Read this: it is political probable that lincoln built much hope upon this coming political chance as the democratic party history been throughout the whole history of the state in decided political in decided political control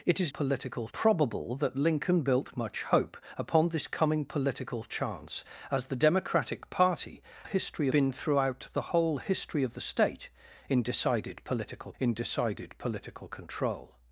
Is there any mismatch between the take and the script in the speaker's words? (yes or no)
no